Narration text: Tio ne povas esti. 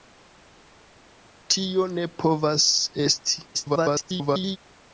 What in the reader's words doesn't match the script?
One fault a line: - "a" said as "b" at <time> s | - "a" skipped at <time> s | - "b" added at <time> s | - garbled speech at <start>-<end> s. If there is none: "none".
- garbled speech at 3.5-4.6 s